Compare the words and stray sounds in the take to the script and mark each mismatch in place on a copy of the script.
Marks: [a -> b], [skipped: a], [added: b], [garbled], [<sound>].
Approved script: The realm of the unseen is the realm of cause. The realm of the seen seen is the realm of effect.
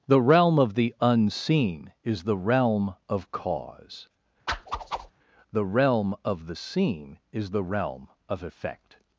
The realm of the unseen is the realm of cause. [whoosh] The realm of the seen [skipped: seen] is the realm of effect.